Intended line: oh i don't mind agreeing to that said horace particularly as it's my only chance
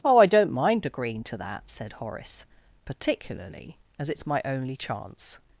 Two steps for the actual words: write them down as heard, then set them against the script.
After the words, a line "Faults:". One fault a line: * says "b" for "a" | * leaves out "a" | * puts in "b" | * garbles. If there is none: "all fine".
oh i don't mind agreeing to that said horace particularly as it's my only chance
Faults:
all fine